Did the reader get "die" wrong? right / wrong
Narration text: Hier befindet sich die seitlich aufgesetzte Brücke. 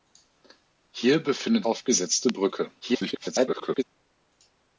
wrong